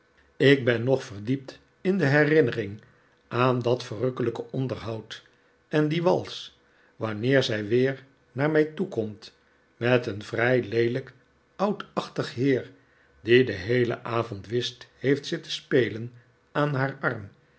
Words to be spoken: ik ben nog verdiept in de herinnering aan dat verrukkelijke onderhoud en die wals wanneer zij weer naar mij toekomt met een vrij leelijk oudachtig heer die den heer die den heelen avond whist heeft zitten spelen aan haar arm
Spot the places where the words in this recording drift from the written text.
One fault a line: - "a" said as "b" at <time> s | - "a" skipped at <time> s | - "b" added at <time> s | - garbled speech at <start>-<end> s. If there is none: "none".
- "heer die den" skipped at 13.6 s